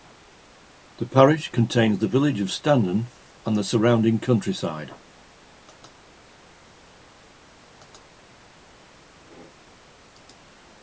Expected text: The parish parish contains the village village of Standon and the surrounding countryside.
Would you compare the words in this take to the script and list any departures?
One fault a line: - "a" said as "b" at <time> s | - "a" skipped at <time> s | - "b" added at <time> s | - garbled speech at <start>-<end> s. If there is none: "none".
- "parish" skipped at 1.5 s
- "village" skipped at 2.4 s